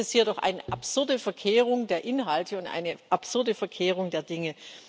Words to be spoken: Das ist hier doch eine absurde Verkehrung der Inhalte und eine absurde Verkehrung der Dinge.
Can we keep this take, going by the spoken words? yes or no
yes